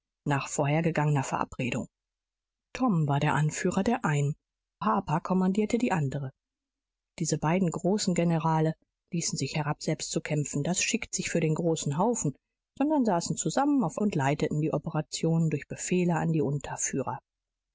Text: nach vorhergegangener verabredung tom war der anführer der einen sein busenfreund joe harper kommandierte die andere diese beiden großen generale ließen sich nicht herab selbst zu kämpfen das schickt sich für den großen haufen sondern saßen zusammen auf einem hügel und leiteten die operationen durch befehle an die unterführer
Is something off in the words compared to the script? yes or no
yes